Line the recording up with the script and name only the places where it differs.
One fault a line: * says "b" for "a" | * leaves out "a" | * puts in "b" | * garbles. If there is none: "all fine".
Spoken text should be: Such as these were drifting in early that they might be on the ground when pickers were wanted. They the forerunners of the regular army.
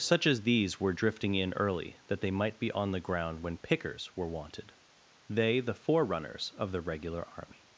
all fine